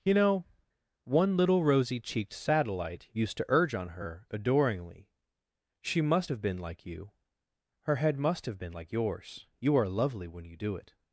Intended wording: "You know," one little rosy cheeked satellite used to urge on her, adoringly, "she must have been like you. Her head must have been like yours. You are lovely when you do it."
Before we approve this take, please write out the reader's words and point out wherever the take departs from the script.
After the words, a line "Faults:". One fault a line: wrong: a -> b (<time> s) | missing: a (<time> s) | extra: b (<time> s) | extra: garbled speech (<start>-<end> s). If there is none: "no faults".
"You know," one little rosy cheeked satellite used to urge on her, adoringly, "she must have been like you. Her head must have been like yours. You are lovely when you do it."
Faults:
no faults